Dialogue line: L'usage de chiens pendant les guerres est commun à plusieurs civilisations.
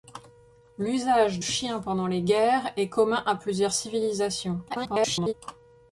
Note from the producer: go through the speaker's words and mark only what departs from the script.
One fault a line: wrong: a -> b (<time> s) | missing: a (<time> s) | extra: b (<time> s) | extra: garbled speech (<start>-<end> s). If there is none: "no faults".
missing: de (1.4 s)
extra: garbled speech (4.7-5.3 s)